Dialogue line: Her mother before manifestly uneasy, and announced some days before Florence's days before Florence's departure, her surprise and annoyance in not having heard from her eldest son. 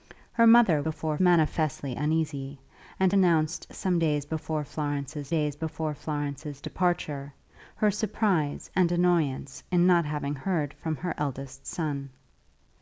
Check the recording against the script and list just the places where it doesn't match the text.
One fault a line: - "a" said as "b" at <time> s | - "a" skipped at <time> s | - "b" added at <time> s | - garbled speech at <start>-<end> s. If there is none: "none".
none